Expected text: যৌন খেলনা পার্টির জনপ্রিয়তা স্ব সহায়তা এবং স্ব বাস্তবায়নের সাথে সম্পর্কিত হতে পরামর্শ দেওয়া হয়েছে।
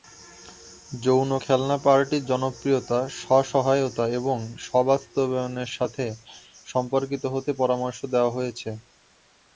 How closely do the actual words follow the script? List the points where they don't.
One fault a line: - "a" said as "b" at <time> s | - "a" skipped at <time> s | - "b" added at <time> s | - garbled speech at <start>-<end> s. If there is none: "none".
none